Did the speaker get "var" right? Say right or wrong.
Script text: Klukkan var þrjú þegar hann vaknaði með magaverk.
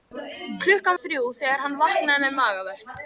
wrong